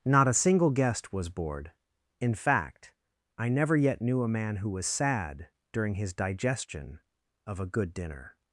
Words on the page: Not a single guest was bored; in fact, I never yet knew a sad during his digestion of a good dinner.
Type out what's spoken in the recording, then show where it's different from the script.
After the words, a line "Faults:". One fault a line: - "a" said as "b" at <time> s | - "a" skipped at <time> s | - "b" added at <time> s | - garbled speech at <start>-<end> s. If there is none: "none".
Not a single guest was bored; in fact, I never yet knew a man who was sad during his digestion of a good dinner.
Faults:
- "man who was" added at 4.3 s